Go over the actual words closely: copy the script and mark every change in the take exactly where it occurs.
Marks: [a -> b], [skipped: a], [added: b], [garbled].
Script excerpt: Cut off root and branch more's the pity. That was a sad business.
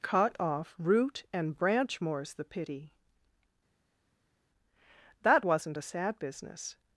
Cut off root and branch more's the pity. That [was -> wasn't] a sad business.